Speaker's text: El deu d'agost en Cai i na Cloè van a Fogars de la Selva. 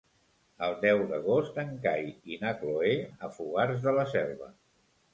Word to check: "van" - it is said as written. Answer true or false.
false